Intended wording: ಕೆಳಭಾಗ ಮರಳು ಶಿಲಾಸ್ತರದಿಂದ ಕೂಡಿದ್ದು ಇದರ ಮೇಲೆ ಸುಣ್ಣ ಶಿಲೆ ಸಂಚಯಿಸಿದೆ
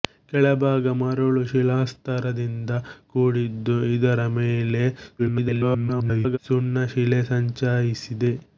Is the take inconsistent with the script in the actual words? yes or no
yes